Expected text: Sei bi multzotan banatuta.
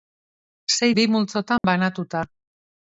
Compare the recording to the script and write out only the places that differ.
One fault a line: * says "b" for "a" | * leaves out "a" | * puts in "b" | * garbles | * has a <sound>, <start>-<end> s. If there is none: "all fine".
* has a dropout, 1.6-1.6 s